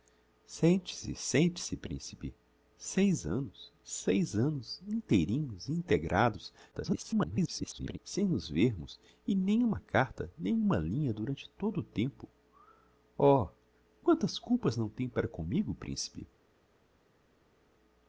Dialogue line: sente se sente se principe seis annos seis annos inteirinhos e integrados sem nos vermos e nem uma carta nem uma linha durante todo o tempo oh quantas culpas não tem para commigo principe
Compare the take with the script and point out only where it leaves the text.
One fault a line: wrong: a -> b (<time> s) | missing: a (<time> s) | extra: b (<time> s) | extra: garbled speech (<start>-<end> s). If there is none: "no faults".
extra: garbled speech (6.7-8.0 s)